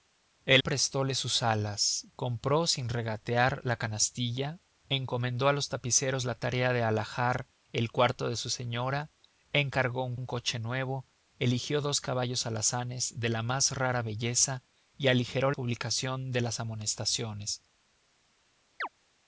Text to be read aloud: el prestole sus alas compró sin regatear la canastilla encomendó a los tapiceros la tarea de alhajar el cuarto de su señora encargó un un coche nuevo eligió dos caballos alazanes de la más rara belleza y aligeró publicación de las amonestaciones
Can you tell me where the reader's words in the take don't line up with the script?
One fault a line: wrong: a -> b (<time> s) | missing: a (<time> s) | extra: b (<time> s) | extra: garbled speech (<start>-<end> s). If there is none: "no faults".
no faults